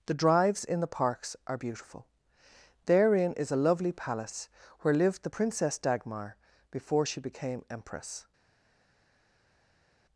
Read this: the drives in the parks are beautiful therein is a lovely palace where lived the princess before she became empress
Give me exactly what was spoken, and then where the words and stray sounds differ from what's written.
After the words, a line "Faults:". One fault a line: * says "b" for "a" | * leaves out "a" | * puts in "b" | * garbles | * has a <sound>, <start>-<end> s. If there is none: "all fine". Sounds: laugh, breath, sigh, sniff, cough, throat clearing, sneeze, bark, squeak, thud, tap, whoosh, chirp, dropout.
the drives in the parks are beautiful therein is a lovely palace where lived the princess dagmar before she became empress
Faults:
* puts in "dagmar"